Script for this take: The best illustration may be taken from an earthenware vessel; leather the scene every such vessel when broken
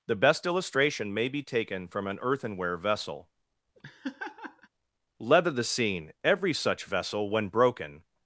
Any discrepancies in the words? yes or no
no